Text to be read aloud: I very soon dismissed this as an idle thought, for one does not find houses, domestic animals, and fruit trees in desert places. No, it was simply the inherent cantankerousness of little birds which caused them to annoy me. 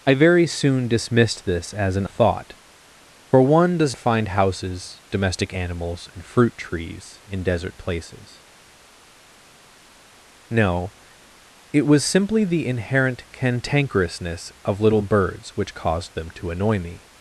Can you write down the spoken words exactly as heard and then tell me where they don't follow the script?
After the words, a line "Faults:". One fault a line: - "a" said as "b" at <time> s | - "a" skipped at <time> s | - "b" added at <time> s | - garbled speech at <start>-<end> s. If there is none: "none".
I very soon dismissed this as an thought, for one does find houses, domestic animals, and fruit trees in desert places. No, it was simply the inherent cantankerousness of little birds which caused them to annoy me.
Faults:
- "idle" skipped at 2.1 s
- "not" skipped at 3.9 s